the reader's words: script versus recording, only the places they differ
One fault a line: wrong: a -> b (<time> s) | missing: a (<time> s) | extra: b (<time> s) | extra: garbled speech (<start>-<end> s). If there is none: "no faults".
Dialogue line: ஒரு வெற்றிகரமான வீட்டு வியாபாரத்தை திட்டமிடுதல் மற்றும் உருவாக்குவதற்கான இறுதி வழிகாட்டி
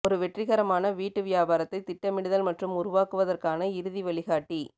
no faults